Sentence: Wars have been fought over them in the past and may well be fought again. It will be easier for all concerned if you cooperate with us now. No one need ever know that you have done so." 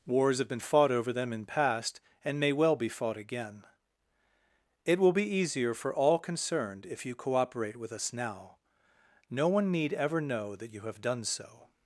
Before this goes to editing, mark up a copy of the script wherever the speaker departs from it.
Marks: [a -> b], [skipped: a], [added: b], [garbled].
Wars have been fought over them in [skipped: the] past and may well be fought again. It will be easier for all concerned if you cooperate with us now. No one need ever know that you have done so."